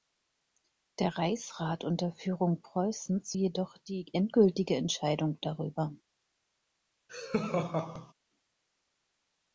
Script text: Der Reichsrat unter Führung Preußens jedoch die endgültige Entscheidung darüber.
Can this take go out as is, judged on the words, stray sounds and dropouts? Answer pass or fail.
fail